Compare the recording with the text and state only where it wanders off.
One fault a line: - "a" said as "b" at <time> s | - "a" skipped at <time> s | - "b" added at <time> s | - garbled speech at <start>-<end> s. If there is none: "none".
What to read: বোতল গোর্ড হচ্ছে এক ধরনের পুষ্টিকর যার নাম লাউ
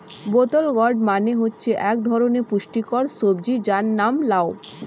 - "মানে" added at 1.1 s
- "সবজি" added at 3.2 s